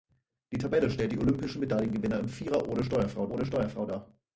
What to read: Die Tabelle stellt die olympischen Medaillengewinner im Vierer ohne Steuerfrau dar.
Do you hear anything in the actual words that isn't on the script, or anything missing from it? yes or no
yes